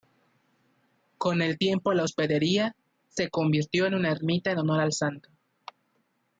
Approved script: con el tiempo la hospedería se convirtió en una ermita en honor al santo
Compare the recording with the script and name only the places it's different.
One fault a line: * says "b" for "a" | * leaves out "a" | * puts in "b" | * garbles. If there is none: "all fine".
all fine